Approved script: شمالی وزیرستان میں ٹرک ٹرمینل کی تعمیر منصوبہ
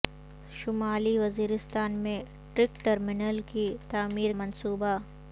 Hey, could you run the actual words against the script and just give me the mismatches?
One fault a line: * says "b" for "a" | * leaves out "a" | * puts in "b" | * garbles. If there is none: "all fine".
all fine